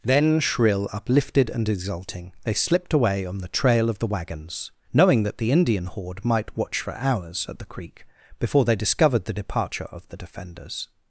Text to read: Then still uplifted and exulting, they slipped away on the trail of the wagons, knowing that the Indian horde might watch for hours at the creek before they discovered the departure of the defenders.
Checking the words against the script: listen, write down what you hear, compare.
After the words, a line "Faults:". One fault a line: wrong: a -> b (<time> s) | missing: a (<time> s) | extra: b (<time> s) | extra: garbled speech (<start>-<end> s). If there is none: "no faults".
Then shrill uplifted and exulting, they slipped away on the trail of the wagons, knowing that the Indian horde might watch for hours at the creek before they discovered the departure of the defenders.
Faults:
wrong: still -> shrill (0.4 s)